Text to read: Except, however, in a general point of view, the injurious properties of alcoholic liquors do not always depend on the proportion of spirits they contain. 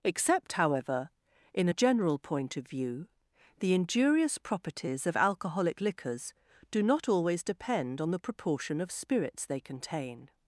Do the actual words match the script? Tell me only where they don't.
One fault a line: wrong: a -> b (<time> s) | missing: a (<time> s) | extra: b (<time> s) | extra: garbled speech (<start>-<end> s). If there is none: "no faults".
no faults